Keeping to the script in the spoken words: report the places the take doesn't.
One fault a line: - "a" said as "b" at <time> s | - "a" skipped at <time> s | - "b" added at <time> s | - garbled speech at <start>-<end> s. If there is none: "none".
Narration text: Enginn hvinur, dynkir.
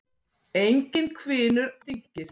none